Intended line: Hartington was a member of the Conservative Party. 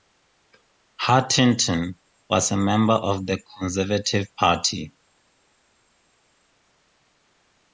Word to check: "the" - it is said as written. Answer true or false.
true